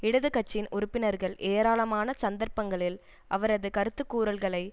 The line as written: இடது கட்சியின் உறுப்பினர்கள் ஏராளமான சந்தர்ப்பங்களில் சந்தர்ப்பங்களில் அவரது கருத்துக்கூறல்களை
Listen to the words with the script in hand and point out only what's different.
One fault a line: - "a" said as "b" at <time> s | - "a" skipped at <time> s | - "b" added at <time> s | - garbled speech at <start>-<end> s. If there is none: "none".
- "சந்தர்ப்பங்களில்" skipped at 3.0 s